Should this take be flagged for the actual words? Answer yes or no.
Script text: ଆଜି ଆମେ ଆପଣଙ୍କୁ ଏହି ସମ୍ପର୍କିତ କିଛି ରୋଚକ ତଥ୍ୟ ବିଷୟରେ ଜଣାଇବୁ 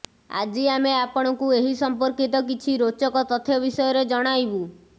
no